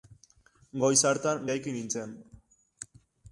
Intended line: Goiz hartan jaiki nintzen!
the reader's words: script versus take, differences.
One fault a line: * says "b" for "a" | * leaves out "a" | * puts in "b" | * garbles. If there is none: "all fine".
all fine